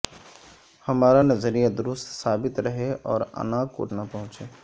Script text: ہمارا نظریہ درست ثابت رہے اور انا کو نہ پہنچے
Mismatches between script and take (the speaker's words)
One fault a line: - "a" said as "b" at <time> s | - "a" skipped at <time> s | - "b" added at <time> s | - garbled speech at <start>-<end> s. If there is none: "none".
none